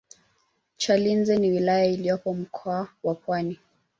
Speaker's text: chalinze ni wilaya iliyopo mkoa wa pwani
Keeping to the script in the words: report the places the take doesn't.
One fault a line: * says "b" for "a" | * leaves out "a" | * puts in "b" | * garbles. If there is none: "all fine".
all fine